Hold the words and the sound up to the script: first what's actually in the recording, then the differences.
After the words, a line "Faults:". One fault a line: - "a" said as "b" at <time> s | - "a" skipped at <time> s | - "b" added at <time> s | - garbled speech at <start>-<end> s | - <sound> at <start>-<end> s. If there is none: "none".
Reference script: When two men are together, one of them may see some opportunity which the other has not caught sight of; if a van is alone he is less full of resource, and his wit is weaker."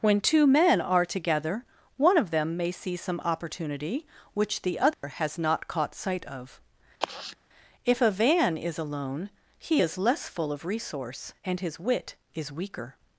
When two men are together, one of them may see some opportunity which the other has not caught sight of; if a van is alone he is less full of resource, and his wit is weaker."
Faults:
- dropout at 4.9-5.0 s
- sigh at 7.0-7.4 s